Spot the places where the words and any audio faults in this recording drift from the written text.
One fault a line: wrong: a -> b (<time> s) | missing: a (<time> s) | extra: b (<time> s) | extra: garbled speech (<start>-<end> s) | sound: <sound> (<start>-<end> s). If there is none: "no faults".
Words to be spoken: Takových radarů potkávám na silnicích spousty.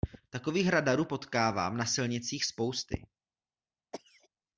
sound: cough (3.9-4.3 s)